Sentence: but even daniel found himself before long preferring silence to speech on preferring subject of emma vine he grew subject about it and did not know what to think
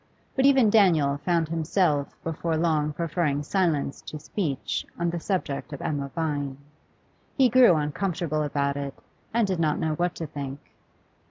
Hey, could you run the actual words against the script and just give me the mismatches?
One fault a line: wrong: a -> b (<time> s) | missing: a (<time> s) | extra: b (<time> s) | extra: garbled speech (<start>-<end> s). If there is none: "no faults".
wrong: preferring -> the (5.1 s)
wrong: subject -> uncomfortable (7.7 s)